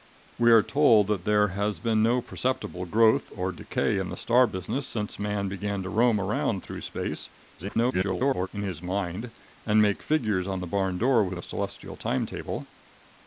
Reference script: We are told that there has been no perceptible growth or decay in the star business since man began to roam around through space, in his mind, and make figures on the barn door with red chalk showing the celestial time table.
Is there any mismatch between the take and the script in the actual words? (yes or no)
yes